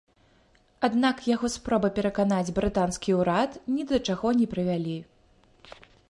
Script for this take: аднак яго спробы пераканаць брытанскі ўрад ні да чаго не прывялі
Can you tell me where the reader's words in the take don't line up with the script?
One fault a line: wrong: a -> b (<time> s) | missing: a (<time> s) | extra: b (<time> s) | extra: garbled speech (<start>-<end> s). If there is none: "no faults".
no faults